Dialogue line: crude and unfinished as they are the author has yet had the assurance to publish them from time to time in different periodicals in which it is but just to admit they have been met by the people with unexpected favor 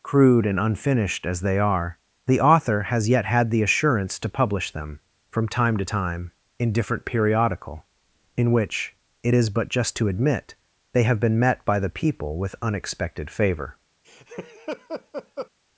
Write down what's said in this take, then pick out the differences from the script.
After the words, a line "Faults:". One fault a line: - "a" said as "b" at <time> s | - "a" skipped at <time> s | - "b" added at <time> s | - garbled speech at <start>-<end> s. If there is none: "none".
crude and unfinished as they are the author has yet had the assurance to publish them from time to time in different periodical in which it is but just to admit they have been met by the people with unexpected favor
Faults:
- "periodicals" said as "periodical" at 7.0 s